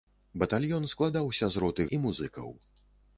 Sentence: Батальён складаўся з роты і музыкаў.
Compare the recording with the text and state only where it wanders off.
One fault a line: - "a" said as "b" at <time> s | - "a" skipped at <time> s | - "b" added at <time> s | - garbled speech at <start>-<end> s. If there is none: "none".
none